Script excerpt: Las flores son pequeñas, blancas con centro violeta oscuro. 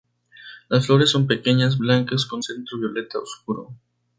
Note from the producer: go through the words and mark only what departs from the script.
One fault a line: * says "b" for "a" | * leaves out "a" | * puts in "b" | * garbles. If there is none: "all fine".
all fine